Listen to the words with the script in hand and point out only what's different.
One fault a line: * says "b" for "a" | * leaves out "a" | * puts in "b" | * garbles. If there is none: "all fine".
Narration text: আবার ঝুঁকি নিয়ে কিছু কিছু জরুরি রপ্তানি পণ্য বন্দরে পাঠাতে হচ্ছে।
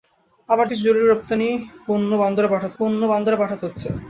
* says "কিছু জরুরি রপ্তানি পণ্য বন্দরে পাঠাতে" for "ঝুঁকি নিয়ে কিছু কিছু জরুরি রপ্তানি"